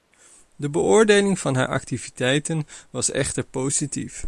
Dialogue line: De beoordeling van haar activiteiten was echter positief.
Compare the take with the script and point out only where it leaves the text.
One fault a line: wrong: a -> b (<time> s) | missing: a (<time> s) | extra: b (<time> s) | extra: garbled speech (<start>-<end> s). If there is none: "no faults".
no faults